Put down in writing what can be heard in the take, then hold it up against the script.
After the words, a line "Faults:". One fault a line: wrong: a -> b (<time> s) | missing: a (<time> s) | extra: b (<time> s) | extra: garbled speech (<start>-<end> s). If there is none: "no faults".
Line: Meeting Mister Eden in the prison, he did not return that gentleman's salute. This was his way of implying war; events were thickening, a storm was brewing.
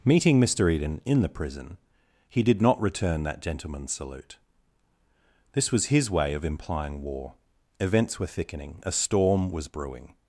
Meeting Mister Eden in the prison, he did not return that gentleman's salute. This was his way of implying war; events were thickening, a storm was brewing.
Faults:
no faults